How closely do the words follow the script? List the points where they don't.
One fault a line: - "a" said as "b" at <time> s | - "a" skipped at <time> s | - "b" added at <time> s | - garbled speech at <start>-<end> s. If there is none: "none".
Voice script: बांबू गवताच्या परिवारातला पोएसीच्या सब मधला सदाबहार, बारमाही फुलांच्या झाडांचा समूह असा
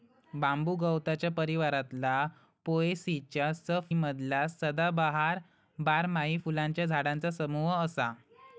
none